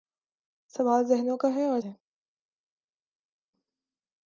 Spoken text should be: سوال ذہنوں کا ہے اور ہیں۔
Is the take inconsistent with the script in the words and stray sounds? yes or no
no